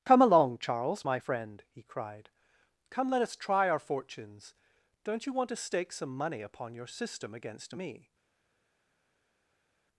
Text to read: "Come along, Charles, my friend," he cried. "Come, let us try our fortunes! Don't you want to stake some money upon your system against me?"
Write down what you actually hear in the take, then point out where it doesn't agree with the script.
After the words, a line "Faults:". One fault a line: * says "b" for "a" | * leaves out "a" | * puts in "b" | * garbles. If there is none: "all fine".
"Come along, Charles, my friend," he cried. "Come, let us try our fortunes! Don't you want to stake some money upon your system against me?"
Faults:
all fine